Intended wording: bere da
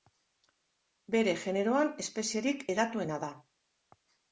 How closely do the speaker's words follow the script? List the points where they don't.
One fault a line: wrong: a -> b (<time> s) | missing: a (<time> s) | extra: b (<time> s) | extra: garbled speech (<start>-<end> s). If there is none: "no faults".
extra: generoan espezierik hedatuena (1.4 s)